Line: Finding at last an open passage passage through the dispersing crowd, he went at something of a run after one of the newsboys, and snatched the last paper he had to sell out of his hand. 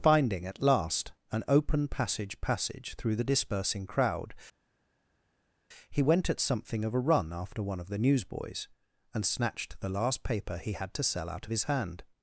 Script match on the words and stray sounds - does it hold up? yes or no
yes